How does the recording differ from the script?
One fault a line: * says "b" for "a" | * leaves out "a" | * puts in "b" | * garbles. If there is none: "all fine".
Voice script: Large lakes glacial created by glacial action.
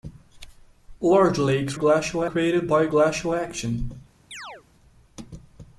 all fine